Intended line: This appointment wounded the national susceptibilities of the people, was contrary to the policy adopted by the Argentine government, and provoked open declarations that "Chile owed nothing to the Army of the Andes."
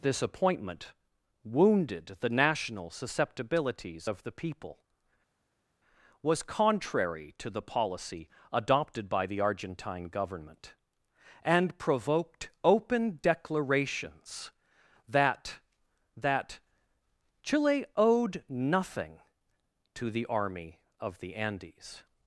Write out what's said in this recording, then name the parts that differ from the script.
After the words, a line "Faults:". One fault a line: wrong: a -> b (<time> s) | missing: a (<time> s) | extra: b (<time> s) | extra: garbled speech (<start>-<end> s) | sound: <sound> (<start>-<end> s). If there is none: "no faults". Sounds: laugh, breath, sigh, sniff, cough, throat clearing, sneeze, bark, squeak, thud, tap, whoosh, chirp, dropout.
This appointment wounded the national susceptibilities of the people, was contrary to the policy adopted by the Argentine government, and provoked open declarations that that "Chile owed nothing to the Army of the Andes."
Faults:
extra: that (16.1 s)